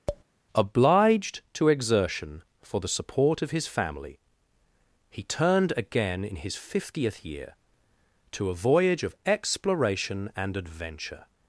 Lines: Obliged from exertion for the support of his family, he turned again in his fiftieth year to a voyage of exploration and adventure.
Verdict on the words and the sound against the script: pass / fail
fail